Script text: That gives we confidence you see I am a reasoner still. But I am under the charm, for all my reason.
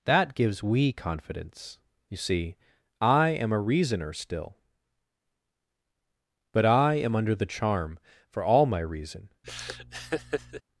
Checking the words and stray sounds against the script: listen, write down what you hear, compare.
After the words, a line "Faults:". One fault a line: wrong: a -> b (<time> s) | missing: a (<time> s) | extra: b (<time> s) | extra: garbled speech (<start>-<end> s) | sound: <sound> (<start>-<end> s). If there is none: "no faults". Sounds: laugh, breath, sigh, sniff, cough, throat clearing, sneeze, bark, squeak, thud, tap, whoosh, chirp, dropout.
That gives we confidence you see I am a reasoner still. But I am under the charm, for all my reason.
Faults:
sound: laugh (9.4-10.6 s)